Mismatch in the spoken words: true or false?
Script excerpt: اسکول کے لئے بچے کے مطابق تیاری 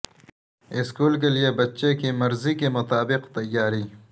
true